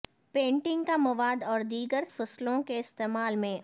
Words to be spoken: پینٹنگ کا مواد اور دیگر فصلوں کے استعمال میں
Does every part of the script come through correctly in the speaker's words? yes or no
yes